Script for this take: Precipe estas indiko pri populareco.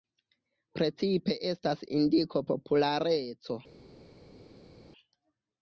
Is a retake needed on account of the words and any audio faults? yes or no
yes